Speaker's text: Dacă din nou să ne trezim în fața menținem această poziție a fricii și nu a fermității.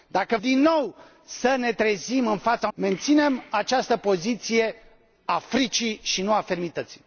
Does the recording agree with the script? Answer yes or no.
yes